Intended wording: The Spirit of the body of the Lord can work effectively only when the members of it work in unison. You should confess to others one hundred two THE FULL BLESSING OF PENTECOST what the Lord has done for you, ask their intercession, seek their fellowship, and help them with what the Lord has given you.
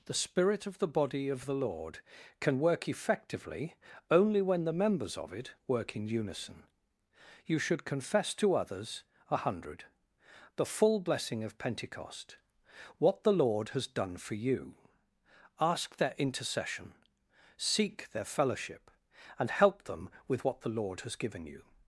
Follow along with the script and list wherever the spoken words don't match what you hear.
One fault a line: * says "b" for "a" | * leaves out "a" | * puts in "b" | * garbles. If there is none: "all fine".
* says "a" for "one"
* leaves out "two"